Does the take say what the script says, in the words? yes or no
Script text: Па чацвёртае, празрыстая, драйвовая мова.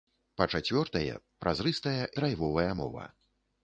yes